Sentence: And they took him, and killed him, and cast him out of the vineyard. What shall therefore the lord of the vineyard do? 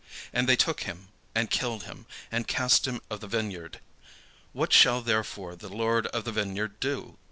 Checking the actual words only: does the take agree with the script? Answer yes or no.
no